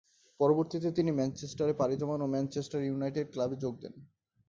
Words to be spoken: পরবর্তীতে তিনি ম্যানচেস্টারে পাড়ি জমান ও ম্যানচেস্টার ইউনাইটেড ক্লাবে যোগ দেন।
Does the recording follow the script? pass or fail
pass